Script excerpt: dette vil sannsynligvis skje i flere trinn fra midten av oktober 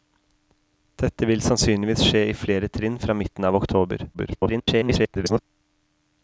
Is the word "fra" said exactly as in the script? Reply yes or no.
yes